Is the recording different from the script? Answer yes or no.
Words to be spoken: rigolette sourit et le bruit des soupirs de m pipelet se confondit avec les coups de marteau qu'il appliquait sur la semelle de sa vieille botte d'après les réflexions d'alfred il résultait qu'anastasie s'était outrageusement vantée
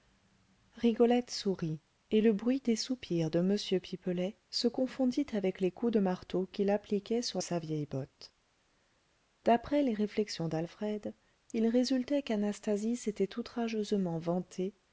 yes